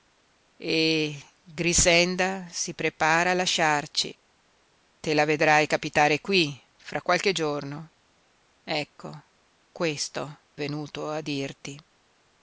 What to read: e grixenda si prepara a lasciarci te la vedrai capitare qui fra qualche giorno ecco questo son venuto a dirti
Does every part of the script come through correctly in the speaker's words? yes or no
no